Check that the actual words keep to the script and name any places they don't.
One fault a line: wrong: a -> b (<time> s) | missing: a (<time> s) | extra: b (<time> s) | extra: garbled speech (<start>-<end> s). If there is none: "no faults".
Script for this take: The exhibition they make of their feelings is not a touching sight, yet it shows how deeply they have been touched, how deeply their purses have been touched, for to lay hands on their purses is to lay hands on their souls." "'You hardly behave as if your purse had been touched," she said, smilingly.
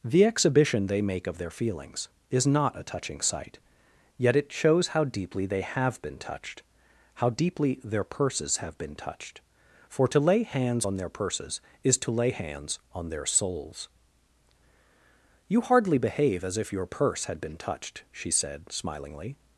no faults